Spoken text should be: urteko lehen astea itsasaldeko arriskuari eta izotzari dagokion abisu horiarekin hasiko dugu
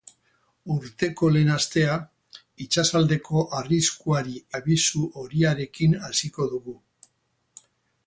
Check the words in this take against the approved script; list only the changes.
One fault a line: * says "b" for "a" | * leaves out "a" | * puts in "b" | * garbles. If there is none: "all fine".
* leaves out "eta izotzari dagokion"